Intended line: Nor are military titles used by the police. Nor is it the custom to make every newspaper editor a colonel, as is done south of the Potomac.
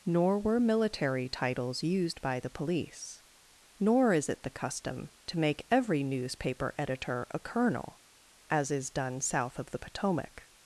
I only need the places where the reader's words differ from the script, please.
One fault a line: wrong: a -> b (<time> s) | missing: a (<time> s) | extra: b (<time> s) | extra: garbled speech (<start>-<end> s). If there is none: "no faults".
wrong: are -> were (0.4 s)